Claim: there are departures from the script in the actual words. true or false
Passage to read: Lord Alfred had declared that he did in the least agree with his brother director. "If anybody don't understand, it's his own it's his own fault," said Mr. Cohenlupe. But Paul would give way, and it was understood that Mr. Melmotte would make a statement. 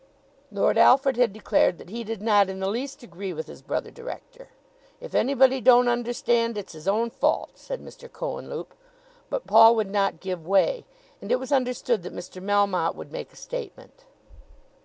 true